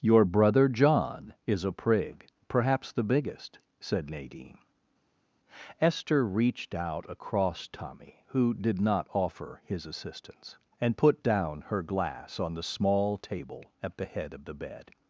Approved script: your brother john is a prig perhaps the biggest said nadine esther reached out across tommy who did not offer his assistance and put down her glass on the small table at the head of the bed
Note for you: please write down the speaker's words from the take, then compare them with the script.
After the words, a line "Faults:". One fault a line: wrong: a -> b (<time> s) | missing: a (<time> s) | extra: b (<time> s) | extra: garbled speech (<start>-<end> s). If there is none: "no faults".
your brother john is a prig perhaps the biggest said nadine esther reached out across tommy who did not offer his assistance and put down her glass on the small table at the head of the bed
Faults:
no faults